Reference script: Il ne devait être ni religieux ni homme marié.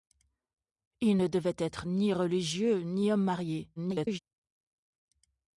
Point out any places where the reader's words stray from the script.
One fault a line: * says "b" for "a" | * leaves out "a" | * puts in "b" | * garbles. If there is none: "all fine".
* garbles